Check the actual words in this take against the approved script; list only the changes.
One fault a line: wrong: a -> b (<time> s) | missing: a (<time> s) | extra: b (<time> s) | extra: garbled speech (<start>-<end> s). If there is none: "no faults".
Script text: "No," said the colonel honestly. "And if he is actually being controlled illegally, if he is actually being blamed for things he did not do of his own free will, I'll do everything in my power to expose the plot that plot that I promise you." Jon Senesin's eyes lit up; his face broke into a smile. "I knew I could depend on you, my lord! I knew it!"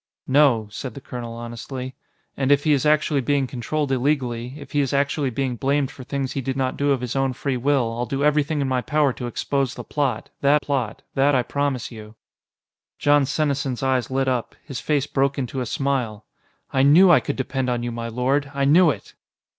no faults